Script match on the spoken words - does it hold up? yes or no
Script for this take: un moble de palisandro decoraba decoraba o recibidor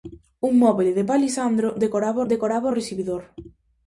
yes